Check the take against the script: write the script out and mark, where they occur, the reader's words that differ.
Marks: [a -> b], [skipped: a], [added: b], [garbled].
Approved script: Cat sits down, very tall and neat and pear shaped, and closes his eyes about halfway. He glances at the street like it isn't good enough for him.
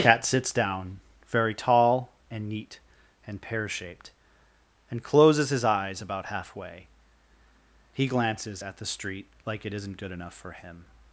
Cat sits down, very tall and neat and pear shaped, and closes his eyes about halfway. He glances at the street like it isn't good enough for him.